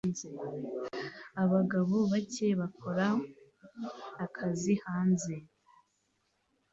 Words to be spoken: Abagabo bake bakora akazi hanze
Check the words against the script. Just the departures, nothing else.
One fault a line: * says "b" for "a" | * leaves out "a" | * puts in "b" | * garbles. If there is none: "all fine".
all fine